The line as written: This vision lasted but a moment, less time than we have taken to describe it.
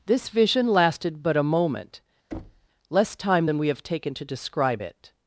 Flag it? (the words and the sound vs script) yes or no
yes